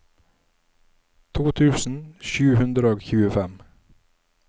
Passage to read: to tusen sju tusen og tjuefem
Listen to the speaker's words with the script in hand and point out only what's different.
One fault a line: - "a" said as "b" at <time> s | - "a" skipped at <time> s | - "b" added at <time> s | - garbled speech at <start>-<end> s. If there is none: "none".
- "tusen" said as "hundre" at 2.6 s